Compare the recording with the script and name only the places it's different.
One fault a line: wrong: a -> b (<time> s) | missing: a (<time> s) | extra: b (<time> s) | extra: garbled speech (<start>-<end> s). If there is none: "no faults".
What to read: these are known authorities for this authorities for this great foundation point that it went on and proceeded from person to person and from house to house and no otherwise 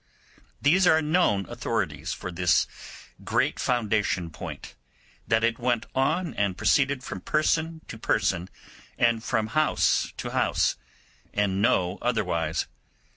missing: authorities for this (2.6 s)